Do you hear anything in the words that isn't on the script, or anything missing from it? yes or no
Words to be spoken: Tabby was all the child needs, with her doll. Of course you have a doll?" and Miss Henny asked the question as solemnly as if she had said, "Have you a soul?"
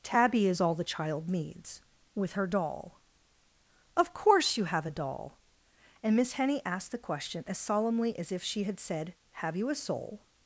yes